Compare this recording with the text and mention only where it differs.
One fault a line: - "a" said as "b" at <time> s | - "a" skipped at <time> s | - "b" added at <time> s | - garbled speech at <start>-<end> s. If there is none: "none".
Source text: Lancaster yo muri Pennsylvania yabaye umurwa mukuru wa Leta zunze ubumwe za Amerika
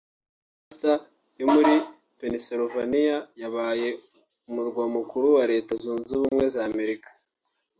none